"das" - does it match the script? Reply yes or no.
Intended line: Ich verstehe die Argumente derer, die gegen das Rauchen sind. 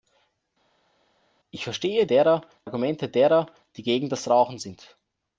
yes